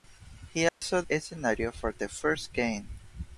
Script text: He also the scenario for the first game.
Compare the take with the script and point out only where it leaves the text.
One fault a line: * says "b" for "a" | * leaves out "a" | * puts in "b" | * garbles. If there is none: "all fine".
all fine